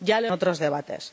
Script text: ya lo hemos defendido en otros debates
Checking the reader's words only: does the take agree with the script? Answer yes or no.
no